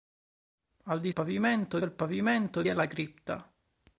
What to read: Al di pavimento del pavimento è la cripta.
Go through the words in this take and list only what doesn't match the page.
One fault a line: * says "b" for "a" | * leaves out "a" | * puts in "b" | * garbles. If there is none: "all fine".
all fine